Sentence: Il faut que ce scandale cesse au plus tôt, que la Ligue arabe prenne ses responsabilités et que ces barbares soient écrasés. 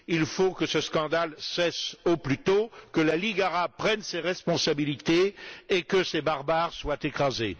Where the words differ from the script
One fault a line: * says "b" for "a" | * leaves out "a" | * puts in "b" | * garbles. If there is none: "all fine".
all fine